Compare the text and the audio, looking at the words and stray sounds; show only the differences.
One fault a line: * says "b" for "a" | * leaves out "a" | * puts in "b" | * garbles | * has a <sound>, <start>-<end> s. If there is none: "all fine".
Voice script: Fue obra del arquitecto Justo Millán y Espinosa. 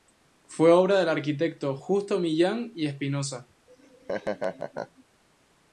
* has a laugh, 3.7-5.0 s